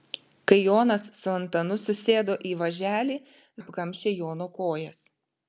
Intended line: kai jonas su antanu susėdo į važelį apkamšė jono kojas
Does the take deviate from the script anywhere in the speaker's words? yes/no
no